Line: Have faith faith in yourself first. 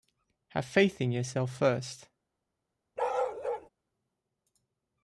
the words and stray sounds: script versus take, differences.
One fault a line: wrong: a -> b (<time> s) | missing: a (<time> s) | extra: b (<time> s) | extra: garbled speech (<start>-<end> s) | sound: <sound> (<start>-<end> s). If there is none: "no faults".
missing: faith (1.0 s)
sound: bark (3.0-3.7 s)